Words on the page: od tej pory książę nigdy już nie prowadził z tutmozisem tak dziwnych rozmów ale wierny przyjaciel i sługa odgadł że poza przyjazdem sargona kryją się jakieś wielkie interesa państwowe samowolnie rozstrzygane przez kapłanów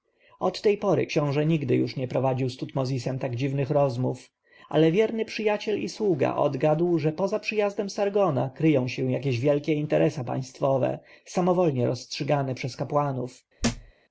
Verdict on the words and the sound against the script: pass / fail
fail